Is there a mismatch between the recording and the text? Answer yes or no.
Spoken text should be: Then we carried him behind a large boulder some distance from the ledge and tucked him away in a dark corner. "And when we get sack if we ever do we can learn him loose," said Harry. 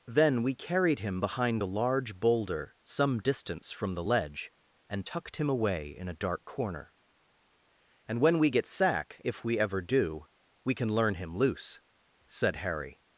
no